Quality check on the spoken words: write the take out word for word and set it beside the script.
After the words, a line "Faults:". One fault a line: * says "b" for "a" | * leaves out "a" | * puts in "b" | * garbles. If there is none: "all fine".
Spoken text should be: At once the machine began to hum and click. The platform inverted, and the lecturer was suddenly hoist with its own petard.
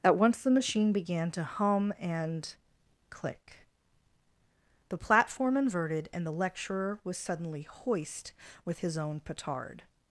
At once the machine began to hum and click. The platform inverted, and the lecturer was suddenly hoist with his own petard.
Faults:
* says "his" for "its"